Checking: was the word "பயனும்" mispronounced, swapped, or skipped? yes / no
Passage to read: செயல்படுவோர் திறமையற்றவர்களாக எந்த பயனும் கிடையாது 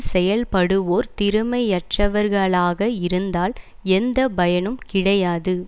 no